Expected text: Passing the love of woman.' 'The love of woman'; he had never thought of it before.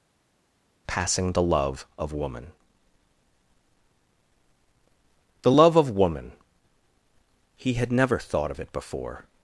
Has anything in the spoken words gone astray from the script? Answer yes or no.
no